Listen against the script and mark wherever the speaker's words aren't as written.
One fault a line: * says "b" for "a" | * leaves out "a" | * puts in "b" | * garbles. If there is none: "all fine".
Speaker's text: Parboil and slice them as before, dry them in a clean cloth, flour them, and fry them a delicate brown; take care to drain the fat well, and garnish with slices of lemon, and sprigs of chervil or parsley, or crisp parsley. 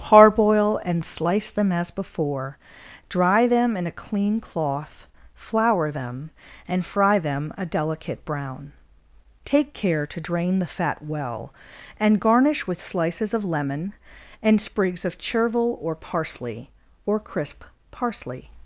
all fine